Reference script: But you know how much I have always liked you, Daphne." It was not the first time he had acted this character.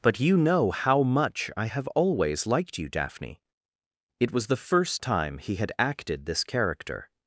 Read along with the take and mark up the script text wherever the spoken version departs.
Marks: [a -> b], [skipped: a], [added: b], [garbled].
But you know how much I have always liked you, Daphne." It was [skipped: not] the first time he had acted this character.